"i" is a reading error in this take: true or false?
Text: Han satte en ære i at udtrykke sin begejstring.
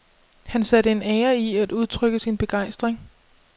false